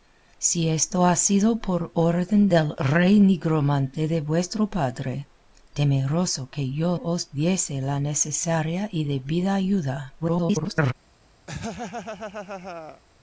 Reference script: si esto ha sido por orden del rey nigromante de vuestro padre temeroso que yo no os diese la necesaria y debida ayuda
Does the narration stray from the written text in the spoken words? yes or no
yes